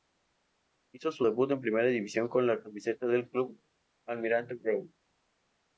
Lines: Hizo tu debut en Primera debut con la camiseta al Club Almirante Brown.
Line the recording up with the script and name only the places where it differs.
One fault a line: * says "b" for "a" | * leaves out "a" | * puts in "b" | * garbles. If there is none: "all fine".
* says "su" for "tu"
* says "división" for "debut"
* says "del" for "al"